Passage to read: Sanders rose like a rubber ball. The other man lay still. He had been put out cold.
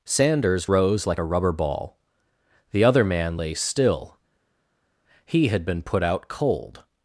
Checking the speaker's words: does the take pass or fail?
pass